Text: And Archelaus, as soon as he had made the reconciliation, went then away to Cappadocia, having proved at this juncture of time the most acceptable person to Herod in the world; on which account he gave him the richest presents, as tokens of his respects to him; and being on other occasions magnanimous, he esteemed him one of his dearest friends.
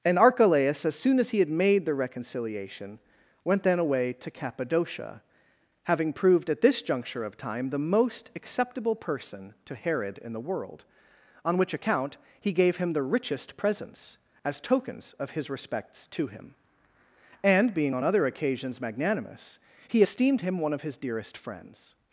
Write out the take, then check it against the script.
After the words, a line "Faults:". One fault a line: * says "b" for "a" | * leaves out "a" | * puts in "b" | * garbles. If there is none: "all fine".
And Archelaus, as soon as he had made the reconciliation, went then away to Cappadocia, having proved at this juncture of time the most acceptable person to Herod in the world; on which account he gave him the richest presents, as tokens of his respects to him; and being on other occasions magnanimous, he esteemed him one of his dearest friends.
Faults:
all fine